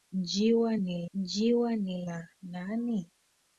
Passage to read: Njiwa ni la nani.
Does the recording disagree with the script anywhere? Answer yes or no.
yes